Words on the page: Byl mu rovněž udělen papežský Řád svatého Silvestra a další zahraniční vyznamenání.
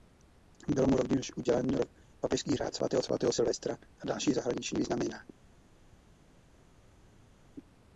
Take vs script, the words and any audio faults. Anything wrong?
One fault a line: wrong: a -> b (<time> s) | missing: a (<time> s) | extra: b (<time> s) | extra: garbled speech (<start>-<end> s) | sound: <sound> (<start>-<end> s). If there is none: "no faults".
extra: svatého (3.0 s)